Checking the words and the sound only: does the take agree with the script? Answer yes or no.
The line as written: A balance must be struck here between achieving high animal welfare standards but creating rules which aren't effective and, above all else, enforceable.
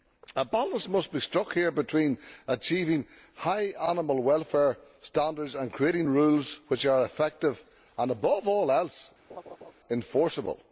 no